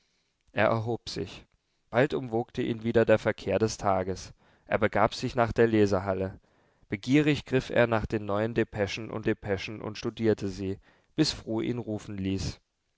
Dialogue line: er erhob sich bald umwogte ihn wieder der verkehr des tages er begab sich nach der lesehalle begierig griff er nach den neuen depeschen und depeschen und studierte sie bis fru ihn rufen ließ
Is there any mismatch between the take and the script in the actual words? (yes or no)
no